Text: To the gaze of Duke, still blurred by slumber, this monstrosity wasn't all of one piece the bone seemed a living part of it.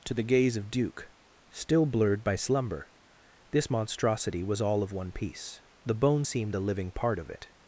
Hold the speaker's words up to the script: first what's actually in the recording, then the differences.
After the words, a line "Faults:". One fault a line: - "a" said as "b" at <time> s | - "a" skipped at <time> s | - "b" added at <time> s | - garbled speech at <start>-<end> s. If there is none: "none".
To the gaze of Duke, still blurred by slumber, this monstrosity was all of one piece the bone seemed a living part of it.
Faults:
- "wasn't" said as "was" at 4.4 s